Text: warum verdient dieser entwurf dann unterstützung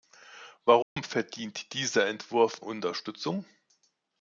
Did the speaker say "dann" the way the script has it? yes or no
no